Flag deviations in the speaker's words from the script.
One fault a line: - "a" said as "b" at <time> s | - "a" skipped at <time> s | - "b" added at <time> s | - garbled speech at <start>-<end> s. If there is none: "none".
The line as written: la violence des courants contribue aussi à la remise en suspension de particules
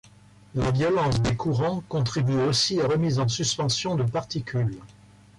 - "la" skipped at 2.9 s